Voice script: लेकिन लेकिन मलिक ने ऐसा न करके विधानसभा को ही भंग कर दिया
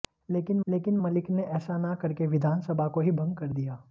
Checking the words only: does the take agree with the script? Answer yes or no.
yes